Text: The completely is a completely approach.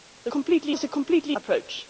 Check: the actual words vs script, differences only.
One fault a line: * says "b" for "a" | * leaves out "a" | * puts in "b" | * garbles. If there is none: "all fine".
all fine